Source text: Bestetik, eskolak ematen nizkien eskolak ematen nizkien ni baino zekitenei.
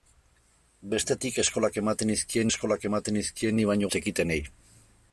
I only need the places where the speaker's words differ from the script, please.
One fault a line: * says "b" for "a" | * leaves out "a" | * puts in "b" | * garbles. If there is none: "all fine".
all fine